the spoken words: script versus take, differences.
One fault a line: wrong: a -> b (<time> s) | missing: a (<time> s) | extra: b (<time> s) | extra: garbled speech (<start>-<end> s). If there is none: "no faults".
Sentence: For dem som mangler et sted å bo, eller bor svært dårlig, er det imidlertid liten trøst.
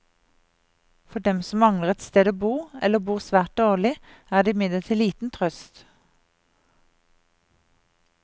no faults